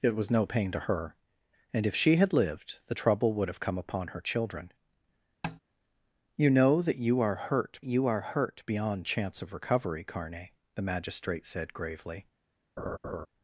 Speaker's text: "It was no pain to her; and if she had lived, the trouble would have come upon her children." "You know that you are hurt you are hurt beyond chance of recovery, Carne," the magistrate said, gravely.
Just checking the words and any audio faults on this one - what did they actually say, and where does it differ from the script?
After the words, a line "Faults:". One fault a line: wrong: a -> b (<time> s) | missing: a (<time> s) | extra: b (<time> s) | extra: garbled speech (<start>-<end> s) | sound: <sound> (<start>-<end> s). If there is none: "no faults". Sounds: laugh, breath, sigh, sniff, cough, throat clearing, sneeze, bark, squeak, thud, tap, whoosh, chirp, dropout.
"It was no pain to her; and if she had lived, the trouble would have come upon her children." "You know that you are hurt you are hurt beyond chance of recovery, Carne," the magistrate said, gravely.
Faults:
sound: tap (5.4-5.6 s)
sound: laugh (12.8-13.3 s)